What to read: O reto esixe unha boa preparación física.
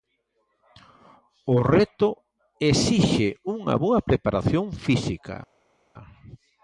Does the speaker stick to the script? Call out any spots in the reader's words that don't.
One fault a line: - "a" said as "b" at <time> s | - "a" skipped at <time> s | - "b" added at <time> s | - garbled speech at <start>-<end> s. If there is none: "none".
none